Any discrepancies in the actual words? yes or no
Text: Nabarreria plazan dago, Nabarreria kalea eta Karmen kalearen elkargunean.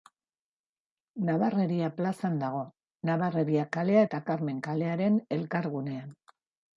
no